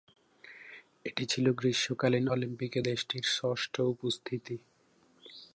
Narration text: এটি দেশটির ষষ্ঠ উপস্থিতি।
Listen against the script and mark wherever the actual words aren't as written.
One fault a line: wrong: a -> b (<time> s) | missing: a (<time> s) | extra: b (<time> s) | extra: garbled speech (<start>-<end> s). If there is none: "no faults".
extra: ছিল গ্রীষ্মকালীন অলিম্পিকে (1.2 s)